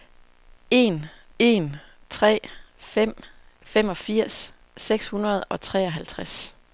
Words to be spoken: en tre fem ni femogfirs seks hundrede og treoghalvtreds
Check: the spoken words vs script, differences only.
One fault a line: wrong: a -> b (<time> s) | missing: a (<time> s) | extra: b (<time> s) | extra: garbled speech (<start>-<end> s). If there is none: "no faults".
extra: en (1.4 s)
missing: ni (3.2 s)